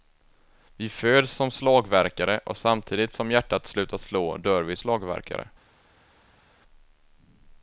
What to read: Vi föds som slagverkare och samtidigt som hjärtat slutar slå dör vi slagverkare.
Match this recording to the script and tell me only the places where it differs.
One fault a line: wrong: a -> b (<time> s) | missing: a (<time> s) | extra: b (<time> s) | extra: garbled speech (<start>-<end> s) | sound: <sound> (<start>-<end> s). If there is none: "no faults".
no faults